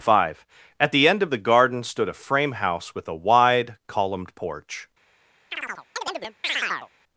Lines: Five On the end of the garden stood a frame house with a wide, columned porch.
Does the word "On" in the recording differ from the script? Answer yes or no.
yes